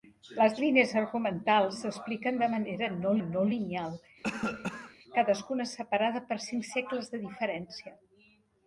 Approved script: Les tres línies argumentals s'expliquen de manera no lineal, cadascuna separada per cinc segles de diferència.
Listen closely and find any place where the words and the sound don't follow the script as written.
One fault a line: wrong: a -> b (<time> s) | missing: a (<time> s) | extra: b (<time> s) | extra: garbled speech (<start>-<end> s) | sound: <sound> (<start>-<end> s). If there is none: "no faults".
missing: tres (0.5 s)
extra: no (3.3 s)
sound: cough (4.2-5.0 s)